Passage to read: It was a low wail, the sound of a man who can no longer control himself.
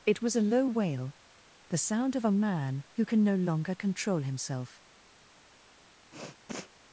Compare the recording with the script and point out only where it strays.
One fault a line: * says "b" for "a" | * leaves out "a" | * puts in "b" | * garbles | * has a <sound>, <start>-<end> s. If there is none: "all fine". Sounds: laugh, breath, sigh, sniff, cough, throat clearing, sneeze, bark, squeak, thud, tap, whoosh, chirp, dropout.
* has a sniff, 6.1-6.7 s